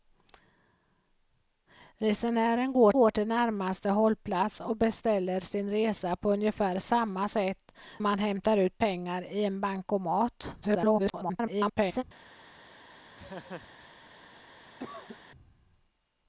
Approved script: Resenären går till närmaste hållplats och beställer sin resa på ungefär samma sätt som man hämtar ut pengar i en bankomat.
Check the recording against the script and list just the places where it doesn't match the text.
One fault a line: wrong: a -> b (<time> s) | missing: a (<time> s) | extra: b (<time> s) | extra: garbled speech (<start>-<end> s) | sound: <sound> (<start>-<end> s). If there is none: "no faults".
extra: går (2.9 s)
missing: som (7.7 s)
extra: garbled speech (10.6-12.0 s)
sound: laugh (13.2-13.9 s)
sound: cough (14.8-15.2 s)